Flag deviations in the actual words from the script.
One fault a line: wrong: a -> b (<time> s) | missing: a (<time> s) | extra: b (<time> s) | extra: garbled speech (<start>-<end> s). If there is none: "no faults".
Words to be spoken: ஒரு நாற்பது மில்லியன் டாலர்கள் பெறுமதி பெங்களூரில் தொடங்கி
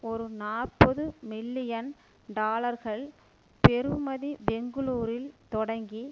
no faults